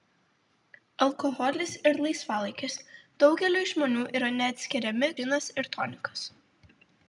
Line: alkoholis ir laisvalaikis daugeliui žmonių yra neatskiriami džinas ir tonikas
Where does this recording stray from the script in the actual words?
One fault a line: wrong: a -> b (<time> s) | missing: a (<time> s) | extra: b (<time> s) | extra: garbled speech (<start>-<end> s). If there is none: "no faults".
no faults